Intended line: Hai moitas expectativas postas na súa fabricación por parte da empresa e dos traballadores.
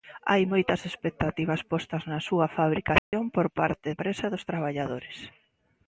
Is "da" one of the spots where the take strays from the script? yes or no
yes